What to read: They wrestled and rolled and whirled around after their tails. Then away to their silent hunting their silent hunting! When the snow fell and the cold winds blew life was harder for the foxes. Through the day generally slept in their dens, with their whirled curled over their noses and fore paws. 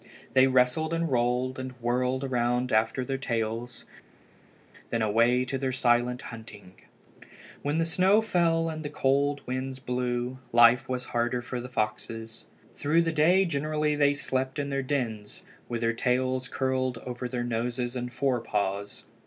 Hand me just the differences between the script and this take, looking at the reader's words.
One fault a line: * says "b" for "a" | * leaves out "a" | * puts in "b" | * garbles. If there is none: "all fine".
* leaves out "their silent hunting"
* puts in "they"
* says "tails" for "whirled"